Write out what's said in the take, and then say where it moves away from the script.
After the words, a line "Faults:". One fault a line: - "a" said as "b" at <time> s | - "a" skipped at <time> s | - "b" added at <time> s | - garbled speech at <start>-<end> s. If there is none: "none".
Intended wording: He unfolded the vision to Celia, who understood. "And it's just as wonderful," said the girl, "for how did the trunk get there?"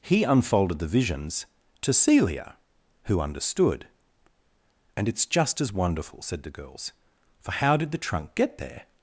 He unfolded the visions to Celia, who understood. "And it's just as wonderful," said the girls, "for how did the trunk get there?"
Faults:
- "vision" said as "visions" at 0.9 s
- "girl" said as "girls" at 6.5 s